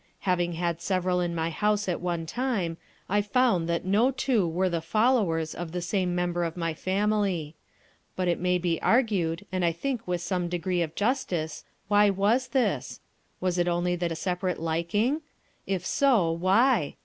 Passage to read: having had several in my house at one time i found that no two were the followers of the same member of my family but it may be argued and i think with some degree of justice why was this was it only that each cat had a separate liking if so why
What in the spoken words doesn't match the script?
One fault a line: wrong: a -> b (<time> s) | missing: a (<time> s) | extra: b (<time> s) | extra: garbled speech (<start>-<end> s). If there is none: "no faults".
missing: each cat had (14.1 s)